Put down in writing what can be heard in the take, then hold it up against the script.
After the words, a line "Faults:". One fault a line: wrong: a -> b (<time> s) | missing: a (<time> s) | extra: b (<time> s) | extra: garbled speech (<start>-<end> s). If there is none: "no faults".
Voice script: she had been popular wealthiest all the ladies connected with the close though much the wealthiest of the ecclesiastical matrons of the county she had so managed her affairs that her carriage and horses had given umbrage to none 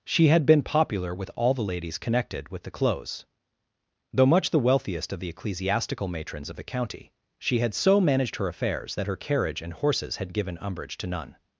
she had been popular with all the ladies connected with the close though much the wealthiest of the ecclesiastical matrons of the county she had so managed her affairs that her carriage and horses had given umbrage to none
Faults:
wrong: wealthiest -> with (1.1 s)